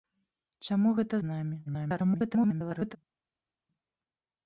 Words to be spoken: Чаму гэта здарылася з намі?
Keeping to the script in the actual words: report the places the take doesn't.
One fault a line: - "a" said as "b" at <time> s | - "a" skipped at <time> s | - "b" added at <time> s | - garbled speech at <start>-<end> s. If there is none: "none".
- "здарылася" skipped at 1.1 s
- garbled speech at 1.6-3.0 s